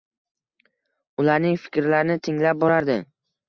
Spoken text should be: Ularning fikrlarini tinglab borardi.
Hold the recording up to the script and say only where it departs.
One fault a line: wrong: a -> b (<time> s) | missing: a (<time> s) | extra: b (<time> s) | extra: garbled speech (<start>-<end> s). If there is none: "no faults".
no faults